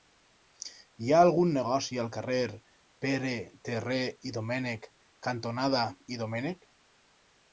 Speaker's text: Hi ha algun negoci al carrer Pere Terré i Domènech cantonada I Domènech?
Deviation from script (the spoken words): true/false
false